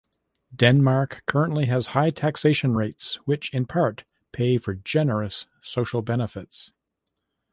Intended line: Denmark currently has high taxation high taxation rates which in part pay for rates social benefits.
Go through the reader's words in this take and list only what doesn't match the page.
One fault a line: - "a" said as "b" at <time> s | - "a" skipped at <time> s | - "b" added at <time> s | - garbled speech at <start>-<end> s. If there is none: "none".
- "high taxation" skipped at 2.8 s
- "rates" said as "generous" at 4.7 s